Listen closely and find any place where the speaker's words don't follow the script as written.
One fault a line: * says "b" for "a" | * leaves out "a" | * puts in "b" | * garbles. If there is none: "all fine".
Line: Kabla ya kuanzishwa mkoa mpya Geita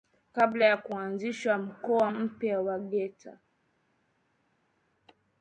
* puts in "wa"